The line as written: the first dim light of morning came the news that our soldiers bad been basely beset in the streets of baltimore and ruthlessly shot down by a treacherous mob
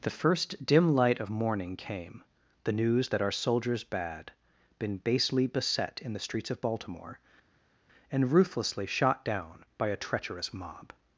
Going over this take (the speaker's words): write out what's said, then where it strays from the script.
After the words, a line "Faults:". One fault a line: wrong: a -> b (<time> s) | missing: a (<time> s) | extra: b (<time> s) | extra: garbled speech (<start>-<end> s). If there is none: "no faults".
the first dim light of morning came the news that our soldiers bad been basely beset in the streets of baltimore and ruthlessly shot down by a treacherous mob
Faults:
no faults